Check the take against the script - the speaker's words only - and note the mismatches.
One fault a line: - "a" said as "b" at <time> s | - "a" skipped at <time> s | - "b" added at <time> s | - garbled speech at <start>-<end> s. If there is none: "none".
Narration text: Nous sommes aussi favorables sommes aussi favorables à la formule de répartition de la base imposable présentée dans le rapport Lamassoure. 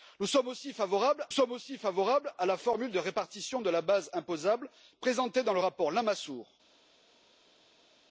none